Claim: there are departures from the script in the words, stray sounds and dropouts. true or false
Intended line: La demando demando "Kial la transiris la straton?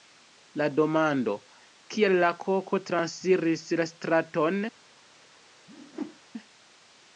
true